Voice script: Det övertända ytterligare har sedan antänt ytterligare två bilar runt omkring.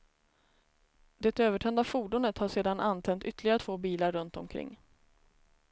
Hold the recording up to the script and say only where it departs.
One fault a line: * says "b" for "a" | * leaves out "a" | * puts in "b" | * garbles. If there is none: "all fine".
* says "fordonet" for "ytterligare"